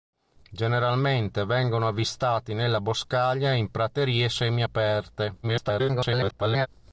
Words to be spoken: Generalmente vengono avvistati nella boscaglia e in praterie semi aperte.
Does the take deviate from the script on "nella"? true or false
false